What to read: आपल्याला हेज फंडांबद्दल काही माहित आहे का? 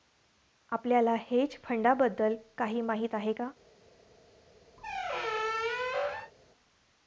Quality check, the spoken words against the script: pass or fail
pass